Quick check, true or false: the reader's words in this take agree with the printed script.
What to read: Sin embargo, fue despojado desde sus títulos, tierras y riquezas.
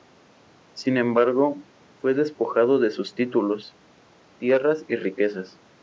false